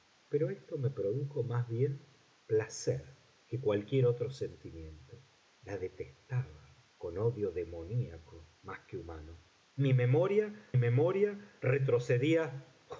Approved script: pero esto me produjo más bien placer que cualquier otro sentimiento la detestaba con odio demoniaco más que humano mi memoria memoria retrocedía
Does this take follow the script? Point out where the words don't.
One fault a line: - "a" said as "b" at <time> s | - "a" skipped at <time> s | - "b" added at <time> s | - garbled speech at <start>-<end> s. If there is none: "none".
none